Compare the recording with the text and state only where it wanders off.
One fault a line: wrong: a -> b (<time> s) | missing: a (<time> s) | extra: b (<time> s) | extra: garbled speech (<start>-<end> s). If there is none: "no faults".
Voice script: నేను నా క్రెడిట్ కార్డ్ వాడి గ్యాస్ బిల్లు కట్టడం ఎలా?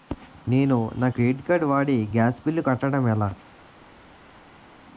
no faults